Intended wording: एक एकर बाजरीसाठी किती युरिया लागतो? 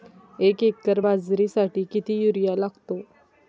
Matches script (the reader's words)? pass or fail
pass